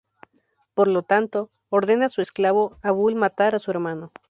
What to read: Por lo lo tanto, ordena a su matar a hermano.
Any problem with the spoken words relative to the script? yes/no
yes